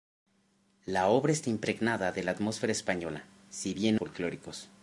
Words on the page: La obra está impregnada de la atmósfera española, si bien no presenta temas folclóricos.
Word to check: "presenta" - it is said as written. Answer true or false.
false